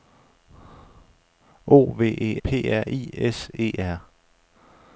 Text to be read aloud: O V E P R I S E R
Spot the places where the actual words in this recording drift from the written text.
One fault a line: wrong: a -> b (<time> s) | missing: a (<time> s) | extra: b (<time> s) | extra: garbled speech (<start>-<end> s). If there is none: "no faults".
no faults